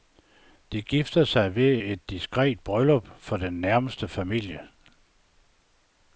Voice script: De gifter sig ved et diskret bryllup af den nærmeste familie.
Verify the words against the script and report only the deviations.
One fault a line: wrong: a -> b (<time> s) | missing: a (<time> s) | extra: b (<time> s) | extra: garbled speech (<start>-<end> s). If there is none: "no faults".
wrong: af -> for (3.2 s)